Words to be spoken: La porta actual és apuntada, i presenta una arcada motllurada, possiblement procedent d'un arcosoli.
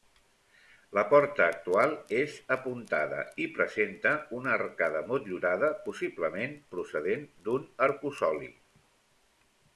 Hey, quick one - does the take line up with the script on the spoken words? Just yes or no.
yes